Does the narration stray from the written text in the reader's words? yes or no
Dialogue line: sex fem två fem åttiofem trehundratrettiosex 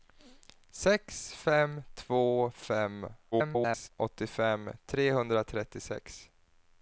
yes